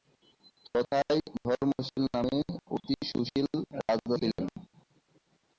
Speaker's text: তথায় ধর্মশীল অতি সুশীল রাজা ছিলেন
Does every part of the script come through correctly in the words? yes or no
no